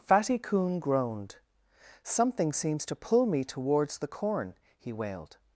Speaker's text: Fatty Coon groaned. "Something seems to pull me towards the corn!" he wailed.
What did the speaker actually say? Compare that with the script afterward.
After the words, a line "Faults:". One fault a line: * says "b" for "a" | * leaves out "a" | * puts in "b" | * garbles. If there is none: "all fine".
Fatty Coon groaned. "Something seems to pull me towards the corn!" he wailed.
Faults:
all fine